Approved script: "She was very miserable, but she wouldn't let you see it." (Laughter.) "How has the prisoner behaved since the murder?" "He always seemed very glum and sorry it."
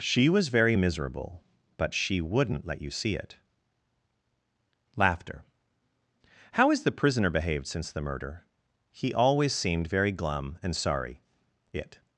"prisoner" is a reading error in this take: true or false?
false